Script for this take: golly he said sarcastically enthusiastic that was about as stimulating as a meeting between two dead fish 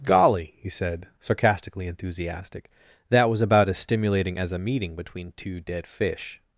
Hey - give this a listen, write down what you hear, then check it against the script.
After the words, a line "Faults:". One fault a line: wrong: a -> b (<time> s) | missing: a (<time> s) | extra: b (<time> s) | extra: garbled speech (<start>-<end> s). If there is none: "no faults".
golly he said sarcastically enthusiastic that was about as stimulating as a meeting between two dead fish
Faults:
no faults